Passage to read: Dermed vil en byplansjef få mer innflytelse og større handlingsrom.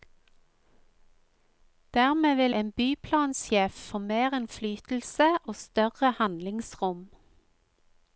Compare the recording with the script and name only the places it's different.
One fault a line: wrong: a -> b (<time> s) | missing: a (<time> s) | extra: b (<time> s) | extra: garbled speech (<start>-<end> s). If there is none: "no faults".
no faults